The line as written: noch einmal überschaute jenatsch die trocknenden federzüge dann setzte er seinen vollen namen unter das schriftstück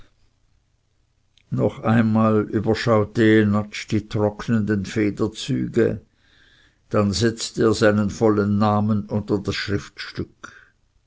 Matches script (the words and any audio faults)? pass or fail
pass